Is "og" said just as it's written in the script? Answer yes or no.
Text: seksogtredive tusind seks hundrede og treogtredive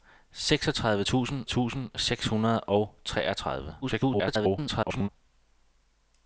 yes